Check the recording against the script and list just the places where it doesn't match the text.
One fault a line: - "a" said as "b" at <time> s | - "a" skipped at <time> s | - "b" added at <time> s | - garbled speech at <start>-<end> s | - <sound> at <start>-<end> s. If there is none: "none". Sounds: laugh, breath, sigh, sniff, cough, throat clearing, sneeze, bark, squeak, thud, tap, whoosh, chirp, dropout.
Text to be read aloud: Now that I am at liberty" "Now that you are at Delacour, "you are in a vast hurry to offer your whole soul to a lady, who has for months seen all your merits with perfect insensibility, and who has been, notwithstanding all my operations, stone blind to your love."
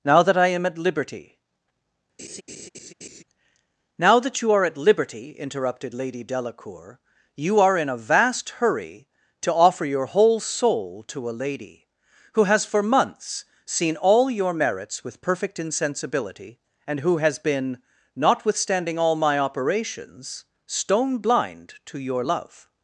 - laugh at 2.2-3.2 s
- "liberty interrupted Lady" added at 4.8 s